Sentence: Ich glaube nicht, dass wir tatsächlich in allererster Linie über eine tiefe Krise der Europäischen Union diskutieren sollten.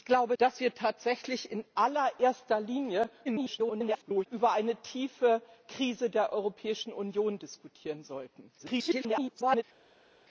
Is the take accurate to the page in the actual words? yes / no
no